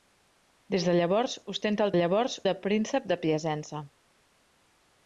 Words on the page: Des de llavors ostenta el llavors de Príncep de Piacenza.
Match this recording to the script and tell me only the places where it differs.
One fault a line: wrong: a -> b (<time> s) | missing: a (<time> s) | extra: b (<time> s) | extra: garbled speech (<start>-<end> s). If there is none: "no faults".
no faults